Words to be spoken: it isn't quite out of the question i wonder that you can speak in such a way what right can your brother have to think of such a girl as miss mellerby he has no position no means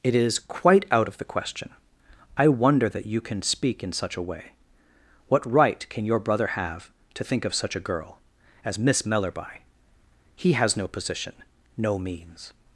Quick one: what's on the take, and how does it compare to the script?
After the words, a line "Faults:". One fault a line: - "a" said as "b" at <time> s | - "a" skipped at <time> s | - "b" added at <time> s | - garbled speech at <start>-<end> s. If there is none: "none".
it is quite out of the question i wonder that you can speak in such a way what right can your brother have to think of such a girl as miss mellerby he has no position no means
Faults:
- "isn't" said as "is" at 0.1 s